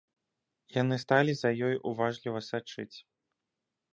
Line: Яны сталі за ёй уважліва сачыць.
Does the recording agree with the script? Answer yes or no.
yes